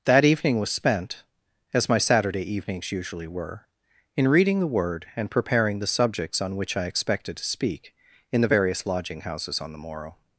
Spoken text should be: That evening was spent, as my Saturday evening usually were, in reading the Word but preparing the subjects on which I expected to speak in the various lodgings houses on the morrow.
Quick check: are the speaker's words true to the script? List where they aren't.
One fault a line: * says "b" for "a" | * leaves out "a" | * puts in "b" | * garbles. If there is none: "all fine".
* says "evenings" for "evening"
* says "and" for "but"
* says "lodging" for "lodgings"